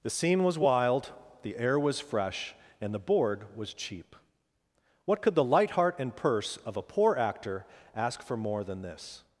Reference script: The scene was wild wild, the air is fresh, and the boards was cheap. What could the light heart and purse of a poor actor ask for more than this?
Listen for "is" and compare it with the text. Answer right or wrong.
wrong